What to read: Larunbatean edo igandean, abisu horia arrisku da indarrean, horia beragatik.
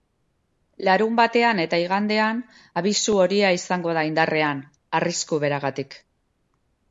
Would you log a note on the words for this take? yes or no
yes